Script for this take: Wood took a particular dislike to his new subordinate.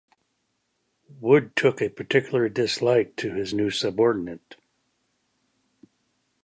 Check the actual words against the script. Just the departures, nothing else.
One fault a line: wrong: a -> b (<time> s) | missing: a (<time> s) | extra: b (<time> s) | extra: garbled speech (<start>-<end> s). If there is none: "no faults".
no faults